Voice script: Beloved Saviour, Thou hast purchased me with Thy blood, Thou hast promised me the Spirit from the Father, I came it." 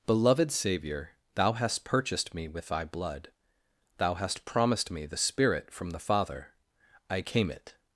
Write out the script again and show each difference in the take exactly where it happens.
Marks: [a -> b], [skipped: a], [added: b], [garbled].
Beloved Saviour, Thou hast purchased me with Thy blood, Thou hast promised me the Spirit from the Father, I came it."